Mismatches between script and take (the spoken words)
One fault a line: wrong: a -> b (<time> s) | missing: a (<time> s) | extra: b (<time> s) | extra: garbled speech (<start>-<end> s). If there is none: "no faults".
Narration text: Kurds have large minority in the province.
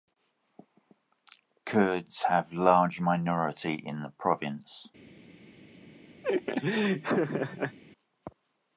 no faults